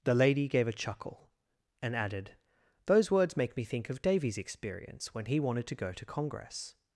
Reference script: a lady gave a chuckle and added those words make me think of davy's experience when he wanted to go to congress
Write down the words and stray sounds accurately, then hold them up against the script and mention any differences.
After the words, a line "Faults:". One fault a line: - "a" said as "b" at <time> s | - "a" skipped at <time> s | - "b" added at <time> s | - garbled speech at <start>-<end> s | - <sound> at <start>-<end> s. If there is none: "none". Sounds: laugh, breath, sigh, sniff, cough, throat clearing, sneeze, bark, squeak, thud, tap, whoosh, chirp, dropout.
the lady gave a chuckle and added those words make me think of davy's experience when he wanted to go to congress
Faults:
- "a" said as "the" at 0.0 s